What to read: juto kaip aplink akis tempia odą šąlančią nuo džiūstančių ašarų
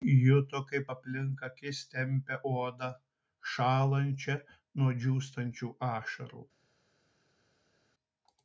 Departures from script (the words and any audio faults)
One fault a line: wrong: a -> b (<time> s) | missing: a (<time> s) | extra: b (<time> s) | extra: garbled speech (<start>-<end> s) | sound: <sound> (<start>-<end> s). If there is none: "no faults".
no faults